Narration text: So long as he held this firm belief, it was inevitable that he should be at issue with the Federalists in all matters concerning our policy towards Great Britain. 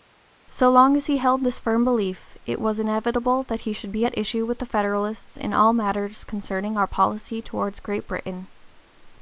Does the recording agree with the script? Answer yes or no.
yes